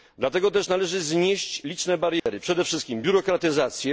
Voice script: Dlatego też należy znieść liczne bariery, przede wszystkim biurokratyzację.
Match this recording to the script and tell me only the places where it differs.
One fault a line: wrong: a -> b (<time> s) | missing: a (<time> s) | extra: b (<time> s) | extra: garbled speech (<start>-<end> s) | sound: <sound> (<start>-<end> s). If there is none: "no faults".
sound: dropout (2.2-2.3 s)